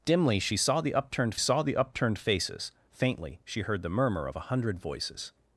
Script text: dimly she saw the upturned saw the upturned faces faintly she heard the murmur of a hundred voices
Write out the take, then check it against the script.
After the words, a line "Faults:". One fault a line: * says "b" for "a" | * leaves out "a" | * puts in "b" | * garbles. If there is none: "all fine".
dimly she saw the upturned saw the upturned faces faintly she heard the murmur of a hundred voices
Faults:
all fine